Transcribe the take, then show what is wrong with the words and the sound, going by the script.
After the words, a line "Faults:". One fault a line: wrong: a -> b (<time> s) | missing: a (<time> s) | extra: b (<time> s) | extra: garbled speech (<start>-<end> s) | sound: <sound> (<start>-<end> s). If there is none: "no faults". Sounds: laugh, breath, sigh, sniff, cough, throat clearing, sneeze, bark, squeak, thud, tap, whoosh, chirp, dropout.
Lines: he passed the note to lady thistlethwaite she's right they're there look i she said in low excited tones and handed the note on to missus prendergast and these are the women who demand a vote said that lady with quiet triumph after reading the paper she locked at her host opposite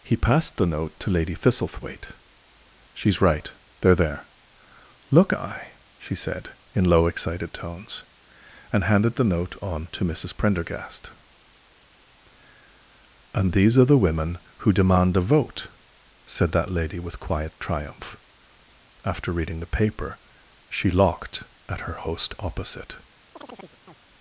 he passed the note to lady thistlethwaite she's right they're there look i she said in low excited tones and handed the note on to missus prendergast and these are the women who demand a vote said that lady with quiet triumph after reading the paper she locked at her host opposite
Faults:
sound: chirp (23.3-24.0 s)